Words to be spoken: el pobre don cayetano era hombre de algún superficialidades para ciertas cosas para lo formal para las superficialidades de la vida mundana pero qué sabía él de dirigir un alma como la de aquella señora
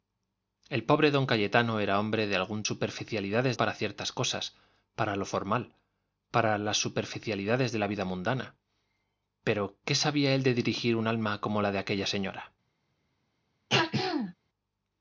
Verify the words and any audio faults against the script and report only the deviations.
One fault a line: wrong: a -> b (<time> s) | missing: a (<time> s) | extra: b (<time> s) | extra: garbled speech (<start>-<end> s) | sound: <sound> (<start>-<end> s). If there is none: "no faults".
sound: throat clearing (13.7-14.3 s)